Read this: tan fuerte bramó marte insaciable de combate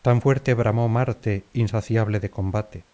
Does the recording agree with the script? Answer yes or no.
yes